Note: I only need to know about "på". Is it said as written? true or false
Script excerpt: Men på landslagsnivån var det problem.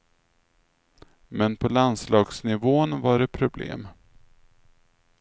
true